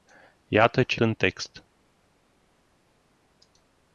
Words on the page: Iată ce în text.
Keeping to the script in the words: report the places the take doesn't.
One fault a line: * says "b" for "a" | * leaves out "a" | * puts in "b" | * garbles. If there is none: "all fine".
all fine